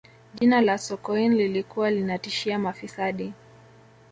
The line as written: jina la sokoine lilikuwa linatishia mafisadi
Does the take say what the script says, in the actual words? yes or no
yes